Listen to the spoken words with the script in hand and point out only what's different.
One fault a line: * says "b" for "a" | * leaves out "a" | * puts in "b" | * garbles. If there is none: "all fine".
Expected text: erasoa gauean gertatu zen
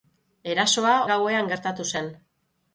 all fine